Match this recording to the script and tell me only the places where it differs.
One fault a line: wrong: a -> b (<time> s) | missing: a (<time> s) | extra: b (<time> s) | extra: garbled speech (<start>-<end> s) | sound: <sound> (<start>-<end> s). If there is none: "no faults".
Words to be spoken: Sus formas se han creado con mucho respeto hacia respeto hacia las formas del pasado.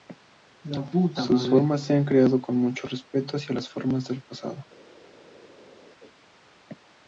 missing: respeto hacia (3.5 s)